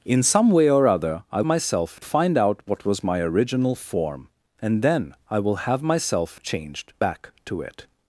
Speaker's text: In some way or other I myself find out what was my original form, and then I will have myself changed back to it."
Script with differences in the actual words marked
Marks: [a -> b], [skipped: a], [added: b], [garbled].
In some way or other I myself find out what was my original form, and then I will have myself changed back to it."